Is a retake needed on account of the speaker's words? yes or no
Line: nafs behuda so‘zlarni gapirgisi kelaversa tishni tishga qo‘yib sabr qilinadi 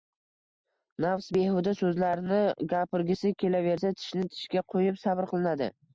no